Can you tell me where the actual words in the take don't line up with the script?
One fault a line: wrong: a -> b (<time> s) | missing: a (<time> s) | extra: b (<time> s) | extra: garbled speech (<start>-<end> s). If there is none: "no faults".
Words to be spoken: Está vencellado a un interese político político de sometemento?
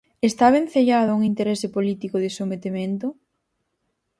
missing: político (2.2 s)